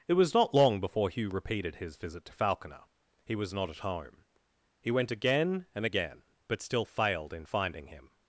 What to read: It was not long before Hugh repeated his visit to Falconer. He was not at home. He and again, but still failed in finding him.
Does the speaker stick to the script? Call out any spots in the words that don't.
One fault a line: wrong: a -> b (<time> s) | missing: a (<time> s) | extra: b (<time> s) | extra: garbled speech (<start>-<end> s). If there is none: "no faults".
extra: went again (4.9 s)